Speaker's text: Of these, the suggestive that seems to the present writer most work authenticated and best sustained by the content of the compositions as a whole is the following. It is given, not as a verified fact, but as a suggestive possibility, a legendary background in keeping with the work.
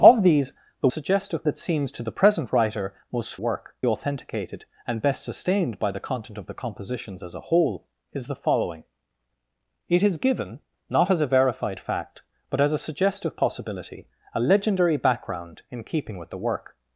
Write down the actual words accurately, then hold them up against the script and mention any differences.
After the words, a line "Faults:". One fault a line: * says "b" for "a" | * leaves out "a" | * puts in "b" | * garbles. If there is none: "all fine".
Of these, the suggestive that seems to the present writer most work authenticated and best sustained by the content of the compositions as a whole is the following. It is given, not as a verified fact, but as a suggestive possibility, a legendary background in keeping with the work.
Faults:
all fine